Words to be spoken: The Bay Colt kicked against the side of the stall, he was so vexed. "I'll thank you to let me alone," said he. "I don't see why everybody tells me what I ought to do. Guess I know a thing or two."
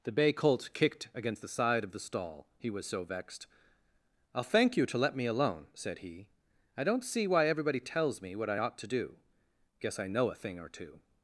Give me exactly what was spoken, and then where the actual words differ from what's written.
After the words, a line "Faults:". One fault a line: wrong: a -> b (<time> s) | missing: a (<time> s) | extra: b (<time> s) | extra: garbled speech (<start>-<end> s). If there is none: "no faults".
The Bay Colt kicked against the side of the stall, he was so vexed. "I'll thank you to let me alone," said he. "I don't see why everybody tells me what I ought to do. Guess I know a thing or two."
Faults:
no faults